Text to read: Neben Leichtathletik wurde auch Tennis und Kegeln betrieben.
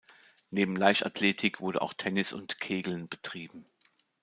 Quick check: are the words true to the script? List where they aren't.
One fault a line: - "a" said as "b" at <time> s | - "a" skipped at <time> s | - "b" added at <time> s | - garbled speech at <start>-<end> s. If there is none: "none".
none